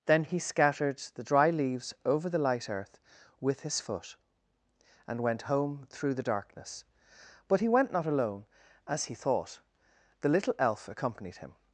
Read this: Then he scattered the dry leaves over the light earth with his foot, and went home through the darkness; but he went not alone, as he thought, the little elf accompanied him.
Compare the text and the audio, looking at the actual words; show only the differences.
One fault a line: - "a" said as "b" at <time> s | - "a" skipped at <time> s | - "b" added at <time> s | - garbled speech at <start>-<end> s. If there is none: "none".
none